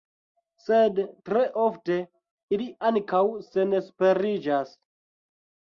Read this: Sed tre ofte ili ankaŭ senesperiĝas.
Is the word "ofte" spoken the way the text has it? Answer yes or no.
yes